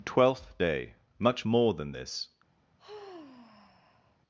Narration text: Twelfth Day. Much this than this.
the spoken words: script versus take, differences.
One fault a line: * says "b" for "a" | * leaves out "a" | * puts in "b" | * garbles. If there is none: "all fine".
* says "more" for "this"